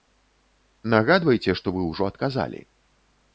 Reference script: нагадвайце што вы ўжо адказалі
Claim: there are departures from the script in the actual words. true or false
false